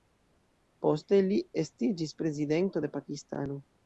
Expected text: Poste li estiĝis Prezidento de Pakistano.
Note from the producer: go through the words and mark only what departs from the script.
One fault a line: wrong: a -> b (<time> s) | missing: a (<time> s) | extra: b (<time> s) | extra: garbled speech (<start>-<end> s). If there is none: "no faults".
no faults